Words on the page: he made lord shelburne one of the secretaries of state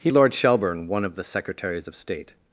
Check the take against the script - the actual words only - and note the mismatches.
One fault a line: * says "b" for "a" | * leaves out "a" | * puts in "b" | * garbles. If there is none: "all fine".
* leaves out "made"